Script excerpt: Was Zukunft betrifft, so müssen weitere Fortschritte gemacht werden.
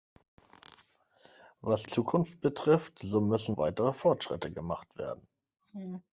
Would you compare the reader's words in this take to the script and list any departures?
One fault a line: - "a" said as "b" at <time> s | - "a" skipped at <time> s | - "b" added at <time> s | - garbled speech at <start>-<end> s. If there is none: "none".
none